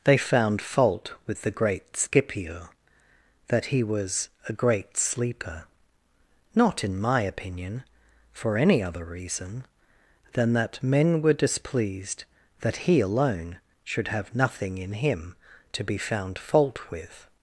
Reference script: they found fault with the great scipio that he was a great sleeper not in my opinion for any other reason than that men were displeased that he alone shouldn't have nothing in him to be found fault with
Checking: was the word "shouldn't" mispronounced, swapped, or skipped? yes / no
yes